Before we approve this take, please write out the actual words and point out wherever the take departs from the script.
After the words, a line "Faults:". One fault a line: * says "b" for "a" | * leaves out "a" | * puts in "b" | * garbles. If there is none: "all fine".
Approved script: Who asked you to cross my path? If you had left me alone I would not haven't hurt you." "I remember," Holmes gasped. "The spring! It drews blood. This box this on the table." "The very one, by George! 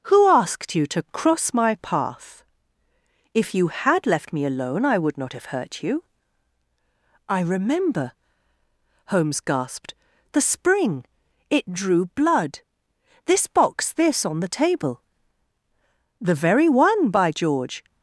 Who asked you to cross my path? If you had left me alone I would not have hurt you." "I remember," Holmes gasped. "The spring! It drew blood. This box this on the table." "The very one, by George!
Faults:
* says "have" for "haven't"
* says "drew" for "drews"